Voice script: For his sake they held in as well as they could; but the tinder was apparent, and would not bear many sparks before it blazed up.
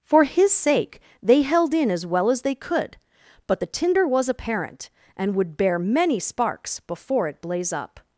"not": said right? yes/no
no